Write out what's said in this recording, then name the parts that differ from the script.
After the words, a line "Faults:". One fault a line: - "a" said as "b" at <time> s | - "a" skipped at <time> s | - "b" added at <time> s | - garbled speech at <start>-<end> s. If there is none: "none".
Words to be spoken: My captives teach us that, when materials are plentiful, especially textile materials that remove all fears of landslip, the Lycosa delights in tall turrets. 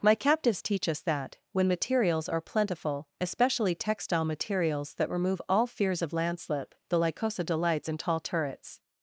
My captives teach us that, when materials are plentiful, especially textile materials that remove all fears of landslip, the Lycosa delights in tall turrets.
Faults:
none